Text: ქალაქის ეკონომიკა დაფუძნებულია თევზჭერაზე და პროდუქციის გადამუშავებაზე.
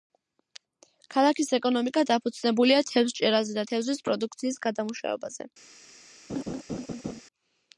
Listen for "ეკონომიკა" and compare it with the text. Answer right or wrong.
right